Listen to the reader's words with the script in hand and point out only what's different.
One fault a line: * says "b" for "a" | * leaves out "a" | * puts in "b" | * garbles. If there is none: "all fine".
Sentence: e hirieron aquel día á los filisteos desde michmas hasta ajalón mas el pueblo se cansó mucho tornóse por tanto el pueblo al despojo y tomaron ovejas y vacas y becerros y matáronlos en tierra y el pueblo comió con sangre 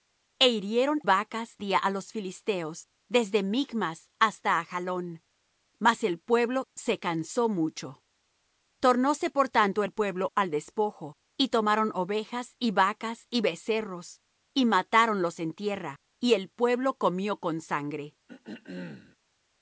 * says "vacas" for "aquel"